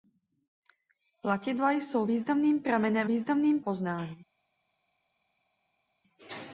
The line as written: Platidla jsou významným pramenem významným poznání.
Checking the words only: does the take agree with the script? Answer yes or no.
yes